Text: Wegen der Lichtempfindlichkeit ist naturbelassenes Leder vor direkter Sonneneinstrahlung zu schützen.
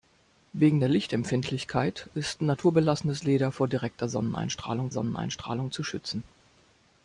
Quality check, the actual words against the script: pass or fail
fail